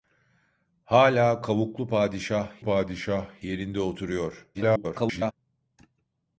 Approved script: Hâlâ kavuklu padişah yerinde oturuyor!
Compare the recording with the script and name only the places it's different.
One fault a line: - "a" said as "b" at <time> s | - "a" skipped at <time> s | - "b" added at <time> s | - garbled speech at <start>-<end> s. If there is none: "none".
- "padişah" added at 2.6 s
- garbled speech at 4.5-5.3 s